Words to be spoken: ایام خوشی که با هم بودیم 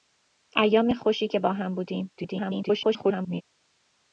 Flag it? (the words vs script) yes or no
yes